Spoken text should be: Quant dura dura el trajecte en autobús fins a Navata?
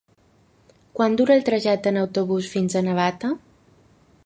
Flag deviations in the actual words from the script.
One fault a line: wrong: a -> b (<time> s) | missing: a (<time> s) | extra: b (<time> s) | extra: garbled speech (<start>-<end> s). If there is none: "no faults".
missing: dura (1.4 s)